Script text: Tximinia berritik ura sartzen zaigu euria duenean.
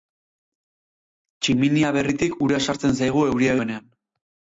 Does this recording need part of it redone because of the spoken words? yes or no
no